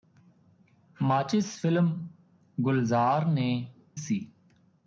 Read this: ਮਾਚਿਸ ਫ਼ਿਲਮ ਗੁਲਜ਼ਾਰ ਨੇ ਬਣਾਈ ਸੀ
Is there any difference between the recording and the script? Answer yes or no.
yes